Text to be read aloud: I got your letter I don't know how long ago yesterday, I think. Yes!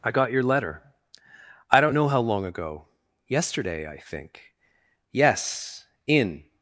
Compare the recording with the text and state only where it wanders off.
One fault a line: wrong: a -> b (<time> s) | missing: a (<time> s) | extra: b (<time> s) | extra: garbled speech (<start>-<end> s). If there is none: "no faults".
extra: in (6.1 s)